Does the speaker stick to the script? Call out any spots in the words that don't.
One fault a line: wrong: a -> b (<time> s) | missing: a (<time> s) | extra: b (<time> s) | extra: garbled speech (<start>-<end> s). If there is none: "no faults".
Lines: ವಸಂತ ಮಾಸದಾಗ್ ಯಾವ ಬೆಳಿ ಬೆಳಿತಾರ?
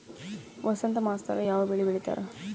no faults